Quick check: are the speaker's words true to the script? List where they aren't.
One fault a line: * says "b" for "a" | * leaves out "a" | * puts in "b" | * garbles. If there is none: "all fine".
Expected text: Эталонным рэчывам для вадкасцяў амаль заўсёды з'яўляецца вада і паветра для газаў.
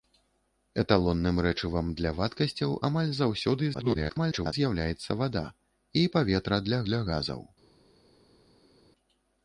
* garbles
* puts in "для"